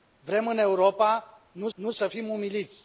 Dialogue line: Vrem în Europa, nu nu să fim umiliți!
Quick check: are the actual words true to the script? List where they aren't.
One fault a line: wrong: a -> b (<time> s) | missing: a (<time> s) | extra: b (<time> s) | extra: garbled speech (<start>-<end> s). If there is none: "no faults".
no faults